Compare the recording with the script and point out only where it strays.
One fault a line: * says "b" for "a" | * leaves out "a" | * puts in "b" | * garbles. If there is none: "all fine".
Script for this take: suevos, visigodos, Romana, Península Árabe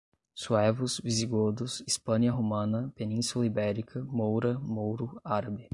* puts in "Hispânia"
* puts in "Ibérica moura mouro"